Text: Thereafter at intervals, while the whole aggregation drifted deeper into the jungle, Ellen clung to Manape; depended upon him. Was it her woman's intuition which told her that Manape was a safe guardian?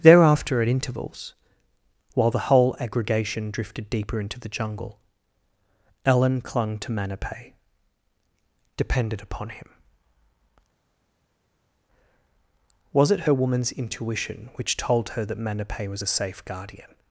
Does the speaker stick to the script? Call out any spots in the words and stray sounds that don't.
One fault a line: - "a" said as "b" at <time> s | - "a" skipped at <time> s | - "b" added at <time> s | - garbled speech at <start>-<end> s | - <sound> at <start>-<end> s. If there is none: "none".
none